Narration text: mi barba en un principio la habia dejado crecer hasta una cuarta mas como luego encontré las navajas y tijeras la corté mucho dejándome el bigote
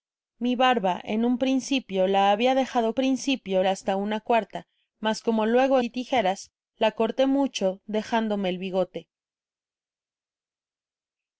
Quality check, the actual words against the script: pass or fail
fail